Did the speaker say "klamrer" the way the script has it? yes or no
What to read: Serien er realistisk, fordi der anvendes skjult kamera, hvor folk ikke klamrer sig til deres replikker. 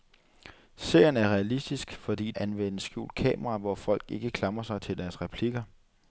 yes